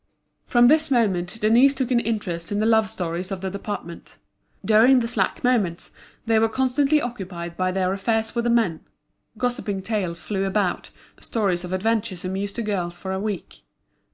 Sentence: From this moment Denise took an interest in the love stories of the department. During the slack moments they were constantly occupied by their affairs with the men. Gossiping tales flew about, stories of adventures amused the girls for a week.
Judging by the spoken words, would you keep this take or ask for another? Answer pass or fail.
pass